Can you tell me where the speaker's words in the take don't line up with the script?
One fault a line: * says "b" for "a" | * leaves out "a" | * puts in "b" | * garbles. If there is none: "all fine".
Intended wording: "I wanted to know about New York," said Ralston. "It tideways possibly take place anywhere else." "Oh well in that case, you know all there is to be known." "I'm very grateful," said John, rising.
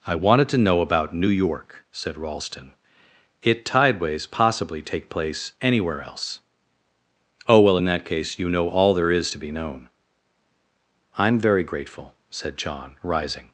all fine